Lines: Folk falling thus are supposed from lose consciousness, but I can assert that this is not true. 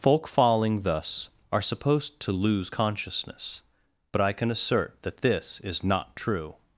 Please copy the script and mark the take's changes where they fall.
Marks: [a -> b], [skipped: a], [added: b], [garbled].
Folk falling thus are supposed [from -> to] lose consciousness, but I can assert that this is not true.